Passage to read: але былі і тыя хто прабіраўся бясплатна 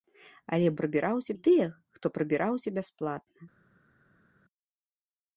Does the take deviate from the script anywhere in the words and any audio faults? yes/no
yes